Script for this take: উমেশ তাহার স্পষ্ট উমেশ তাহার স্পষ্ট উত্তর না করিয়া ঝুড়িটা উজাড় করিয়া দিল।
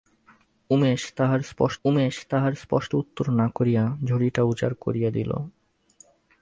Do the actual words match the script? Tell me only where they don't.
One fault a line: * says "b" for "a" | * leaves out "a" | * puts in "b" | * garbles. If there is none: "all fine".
all fine